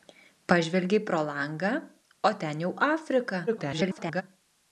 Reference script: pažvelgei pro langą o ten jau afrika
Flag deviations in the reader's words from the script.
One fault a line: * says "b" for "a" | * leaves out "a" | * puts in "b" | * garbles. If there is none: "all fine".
* garbles